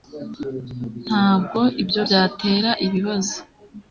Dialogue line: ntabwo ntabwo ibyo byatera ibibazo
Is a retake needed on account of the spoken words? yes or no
yes